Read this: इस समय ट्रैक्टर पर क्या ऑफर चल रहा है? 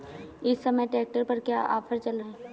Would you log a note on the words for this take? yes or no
yes